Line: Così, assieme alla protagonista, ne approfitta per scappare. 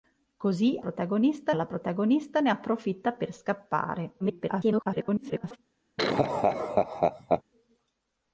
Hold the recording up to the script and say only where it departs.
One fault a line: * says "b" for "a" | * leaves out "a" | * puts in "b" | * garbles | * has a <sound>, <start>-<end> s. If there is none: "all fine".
* says "protagonista" for "assieme"
* garbles
* has a laugh, 6.0-7.4 s